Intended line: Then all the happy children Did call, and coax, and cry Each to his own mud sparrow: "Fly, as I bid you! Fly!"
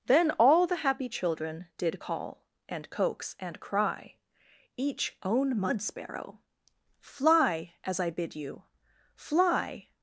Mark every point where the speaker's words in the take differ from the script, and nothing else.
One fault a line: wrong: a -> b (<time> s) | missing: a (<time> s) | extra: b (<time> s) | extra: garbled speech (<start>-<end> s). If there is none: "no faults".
missing: to his (5.2 s)